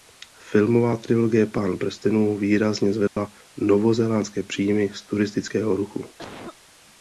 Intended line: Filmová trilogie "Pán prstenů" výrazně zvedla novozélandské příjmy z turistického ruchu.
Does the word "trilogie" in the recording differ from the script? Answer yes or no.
no